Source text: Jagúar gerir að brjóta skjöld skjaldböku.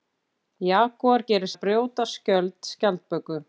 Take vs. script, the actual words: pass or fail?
pass